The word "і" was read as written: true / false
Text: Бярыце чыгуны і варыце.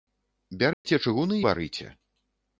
false